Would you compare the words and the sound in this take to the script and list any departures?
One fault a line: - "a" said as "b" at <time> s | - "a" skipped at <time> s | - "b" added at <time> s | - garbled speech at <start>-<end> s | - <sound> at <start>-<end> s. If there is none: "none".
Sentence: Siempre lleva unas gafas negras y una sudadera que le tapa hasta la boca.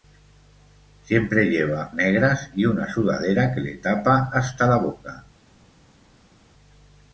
- "unas gafas" skipped at 1.9 s